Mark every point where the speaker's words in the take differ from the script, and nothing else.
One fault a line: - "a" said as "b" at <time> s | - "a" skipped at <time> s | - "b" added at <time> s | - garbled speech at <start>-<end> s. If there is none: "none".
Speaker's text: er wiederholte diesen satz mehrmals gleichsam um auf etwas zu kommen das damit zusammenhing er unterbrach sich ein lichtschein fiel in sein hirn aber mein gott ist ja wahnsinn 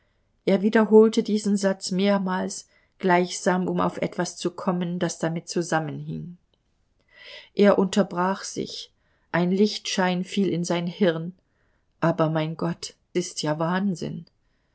none